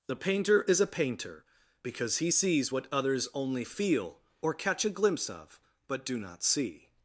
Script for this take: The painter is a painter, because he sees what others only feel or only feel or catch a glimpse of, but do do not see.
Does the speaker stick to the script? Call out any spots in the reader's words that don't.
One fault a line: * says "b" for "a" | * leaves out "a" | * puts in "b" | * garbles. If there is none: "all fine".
* leaves out "only feel or"
* leaves out "do"